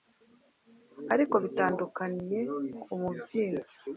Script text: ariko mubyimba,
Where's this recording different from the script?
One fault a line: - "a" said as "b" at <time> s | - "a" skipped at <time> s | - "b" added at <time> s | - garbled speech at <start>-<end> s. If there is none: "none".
- "bitandukaniye ku" added at 1.4 s